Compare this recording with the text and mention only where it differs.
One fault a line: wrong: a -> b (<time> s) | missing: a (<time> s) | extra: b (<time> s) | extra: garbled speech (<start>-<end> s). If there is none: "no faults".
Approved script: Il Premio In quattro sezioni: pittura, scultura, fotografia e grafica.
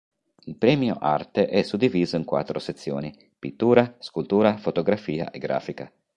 extra: Arte è suddiviso (1.0 s)